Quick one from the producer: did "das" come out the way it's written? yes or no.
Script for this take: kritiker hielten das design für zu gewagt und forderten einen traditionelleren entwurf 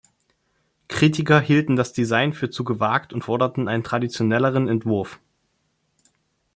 yes